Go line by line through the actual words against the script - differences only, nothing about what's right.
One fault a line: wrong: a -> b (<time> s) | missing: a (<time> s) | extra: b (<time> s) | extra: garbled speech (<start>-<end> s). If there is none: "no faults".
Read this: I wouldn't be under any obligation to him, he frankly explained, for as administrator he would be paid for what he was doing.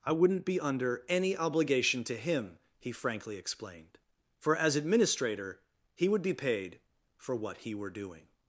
wrong: was -> were (7.7 s)